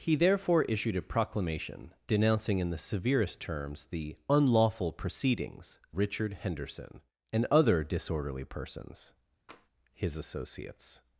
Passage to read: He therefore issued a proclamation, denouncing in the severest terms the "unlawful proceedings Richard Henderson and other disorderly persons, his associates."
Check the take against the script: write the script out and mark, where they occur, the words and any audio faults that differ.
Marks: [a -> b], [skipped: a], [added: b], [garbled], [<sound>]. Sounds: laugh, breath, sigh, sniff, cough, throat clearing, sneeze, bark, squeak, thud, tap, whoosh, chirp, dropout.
He therefore issued a proclamation, denouncing in the severest terms the "unlawful proceedings Richard Henderson and other disorderly persons, [tap] his associates."